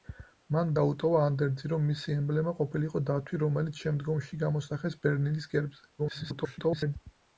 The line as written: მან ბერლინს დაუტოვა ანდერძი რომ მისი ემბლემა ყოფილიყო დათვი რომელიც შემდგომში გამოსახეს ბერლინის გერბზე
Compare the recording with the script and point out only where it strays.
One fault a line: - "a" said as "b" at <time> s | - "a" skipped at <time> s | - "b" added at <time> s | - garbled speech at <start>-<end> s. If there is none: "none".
- "ბერლინს" skipped at 0.7 s
- garbled speech at 6.0-7.0 s